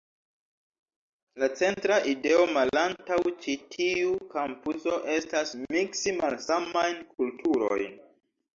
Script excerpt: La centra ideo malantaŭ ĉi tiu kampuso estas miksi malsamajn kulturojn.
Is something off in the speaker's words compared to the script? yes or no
no